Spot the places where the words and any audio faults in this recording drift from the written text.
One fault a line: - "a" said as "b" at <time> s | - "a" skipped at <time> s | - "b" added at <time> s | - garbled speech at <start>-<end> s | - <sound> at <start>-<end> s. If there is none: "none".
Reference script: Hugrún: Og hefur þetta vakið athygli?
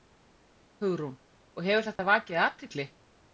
- dropout at 2.0-2.0 s